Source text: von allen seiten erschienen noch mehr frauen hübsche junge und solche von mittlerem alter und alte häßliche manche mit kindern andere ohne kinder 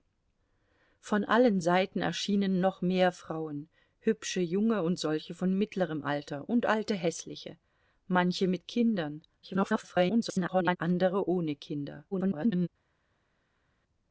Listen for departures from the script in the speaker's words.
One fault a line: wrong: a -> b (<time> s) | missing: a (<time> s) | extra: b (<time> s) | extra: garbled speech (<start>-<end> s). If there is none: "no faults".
extra: garbled speech (9.4-10.8 s)
extra: garbled speech (12.1-12.7 s)